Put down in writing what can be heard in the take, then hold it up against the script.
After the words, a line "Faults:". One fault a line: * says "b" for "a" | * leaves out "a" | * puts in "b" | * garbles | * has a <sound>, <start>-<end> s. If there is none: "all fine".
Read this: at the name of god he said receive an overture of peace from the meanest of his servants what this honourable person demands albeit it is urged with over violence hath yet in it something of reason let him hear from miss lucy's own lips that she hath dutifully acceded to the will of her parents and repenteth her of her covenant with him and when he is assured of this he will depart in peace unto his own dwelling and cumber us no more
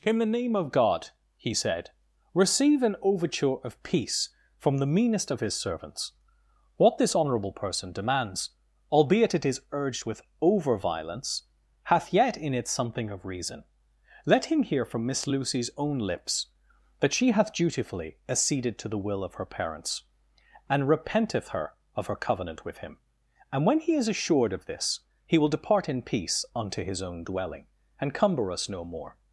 in the name of god he said receive an overture of peace from the meanest of his servants what this honourable person demands albeit it is urged with over violence hath yet in it something of reason let him hear from miss lucy's own lips that she hath dutifully acceded to the will of her parents and repenteth her of her covenant with him and when he is assured of this he will depart in peace unto his own dwelling and cumber us no more
Faults:
* says "in" for "at"